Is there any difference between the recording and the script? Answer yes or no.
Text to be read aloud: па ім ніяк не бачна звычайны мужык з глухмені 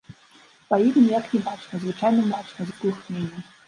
yes